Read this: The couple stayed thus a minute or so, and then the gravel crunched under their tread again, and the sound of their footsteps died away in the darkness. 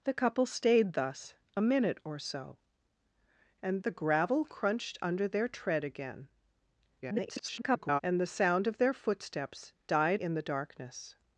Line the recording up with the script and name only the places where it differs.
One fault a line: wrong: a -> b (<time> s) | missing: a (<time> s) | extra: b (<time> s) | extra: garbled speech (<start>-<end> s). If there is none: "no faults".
missing: then (3.8 s)
extra: garbled speech (7.0-8.0 s)
missing: away (10.2 s)